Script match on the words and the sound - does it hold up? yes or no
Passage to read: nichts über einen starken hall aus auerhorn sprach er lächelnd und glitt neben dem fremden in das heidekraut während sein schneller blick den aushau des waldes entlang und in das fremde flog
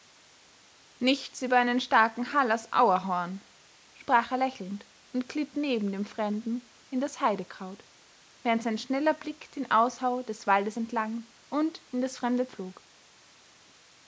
yes